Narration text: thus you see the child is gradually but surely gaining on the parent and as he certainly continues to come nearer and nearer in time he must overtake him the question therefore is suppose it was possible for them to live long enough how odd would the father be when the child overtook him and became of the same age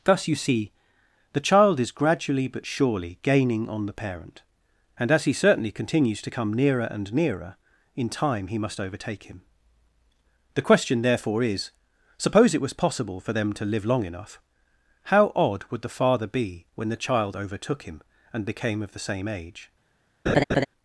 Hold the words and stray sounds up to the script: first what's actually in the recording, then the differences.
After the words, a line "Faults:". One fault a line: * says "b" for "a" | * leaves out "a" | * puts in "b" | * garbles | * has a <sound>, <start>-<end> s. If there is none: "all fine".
thus you see the child is gradually but surely gaining on the parent and as he certainly continues to come nearer and nearer in time he must overtake him the question therefore is suppose it was possible for them to live long enough how odd would the father be when the child overtook him and became of the same age
Faults:
* has a laugh, 20.3-20.7 s